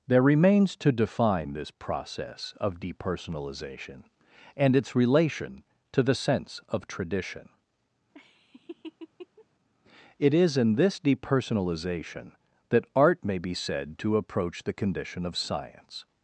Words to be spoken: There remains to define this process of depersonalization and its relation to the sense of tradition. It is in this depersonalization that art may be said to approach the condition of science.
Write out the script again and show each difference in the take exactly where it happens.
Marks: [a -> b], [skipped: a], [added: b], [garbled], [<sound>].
There remains to define this process of depersonalization and its relation to the sense of tradition. [laugh] It is in this depersonalization that art may be said to approach the condition of science.